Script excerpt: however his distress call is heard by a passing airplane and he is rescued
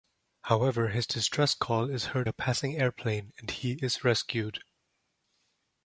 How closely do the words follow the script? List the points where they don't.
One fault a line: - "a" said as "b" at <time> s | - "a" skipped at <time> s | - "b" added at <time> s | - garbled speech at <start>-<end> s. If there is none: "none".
- "by" skipped at 2.3 s